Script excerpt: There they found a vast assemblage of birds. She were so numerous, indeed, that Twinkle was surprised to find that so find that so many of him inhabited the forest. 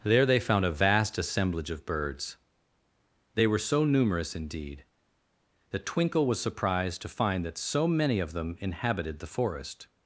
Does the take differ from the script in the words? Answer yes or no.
yes